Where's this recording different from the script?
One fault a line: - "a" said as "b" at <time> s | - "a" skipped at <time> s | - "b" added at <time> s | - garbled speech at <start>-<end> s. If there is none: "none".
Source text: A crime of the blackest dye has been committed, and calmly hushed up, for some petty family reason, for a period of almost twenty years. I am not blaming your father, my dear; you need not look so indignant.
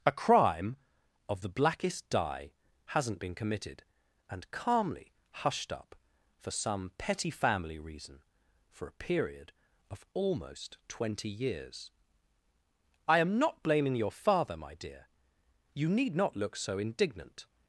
- "has" said as "hasn't" at 2.9 s